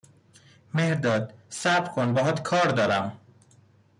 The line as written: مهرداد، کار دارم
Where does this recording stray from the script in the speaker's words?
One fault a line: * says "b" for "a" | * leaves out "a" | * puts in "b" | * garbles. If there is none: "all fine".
* puts in "صبر کن باهات"